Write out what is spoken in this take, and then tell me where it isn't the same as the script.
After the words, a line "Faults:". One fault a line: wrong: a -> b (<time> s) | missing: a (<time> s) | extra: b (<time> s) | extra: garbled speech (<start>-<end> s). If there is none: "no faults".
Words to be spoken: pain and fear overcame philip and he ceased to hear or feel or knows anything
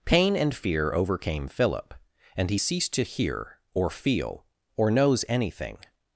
pain and fear overcame philip and he ceased to hear or feel or knows anything
Faults:
no faults